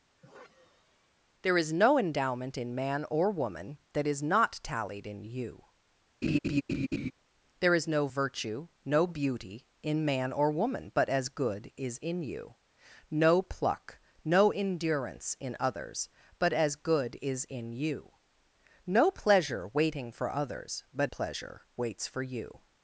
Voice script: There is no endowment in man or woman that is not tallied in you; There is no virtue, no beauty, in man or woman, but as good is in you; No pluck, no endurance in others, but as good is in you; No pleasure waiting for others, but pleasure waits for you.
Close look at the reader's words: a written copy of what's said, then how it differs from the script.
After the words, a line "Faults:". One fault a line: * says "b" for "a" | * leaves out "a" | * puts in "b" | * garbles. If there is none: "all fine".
There is no endowment in man or woman that is not tallied in you; There is no virtue, no beauty, in man or woman, but as good is in you; No pluck, no endurance in others, but as good is in you; No pleasure waiting for others, but pleasure waits for you.
Faults:
all fine